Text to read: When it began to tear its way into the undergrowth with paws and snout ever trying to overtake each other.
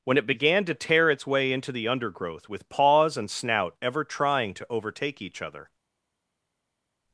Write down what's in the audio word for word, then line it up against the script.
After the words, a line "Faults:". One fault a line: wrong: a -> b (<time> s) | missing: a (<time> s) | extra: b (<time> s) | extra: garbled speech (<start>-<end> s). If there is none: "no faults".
When it began to tear its way into the undergrowth with paws and snout ever trying to overtake each other.
Faults:
no faults